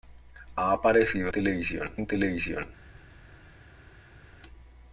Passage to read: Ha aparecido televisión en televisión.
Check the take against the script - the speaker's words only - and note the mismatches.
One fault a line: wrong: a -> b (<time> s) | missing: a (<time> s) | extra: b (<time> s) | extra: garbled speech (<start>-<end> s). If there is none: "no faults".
no faults